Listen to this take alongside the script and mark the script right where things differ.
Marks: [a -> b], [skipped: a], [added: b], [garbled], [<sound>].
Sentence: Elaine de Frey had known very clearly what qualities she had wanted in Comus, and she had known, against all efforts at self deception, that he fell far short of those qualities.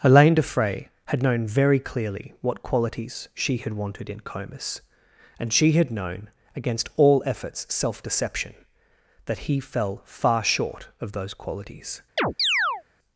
Elaine de Frey had known very clearly what qualities she had wanted in Comus, and she had known, against all efforts [skipped: at] self deception, that he fell far short of those qualities. [chirp]